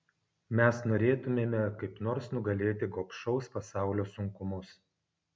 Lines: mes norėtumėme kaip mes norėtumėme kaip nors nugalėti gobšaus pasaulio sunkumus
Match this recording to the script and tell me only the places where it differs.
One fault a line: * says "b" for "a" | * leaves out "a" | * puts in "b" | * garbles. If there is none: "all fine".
* leaves out "mes norėtumėme kaip"